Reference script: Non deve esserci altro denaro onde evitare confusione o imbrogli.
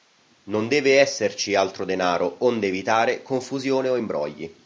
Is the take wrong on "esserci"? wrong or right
right